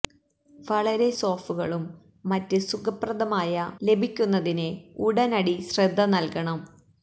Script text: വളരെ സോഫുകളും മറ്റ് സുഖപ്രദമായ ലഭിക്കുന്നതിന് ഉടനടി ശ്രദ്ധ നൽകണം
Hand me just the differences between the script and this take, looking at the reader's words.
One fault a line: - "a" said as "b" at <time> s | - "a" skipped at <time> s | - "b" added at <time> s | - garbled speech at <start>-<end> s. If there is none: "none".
none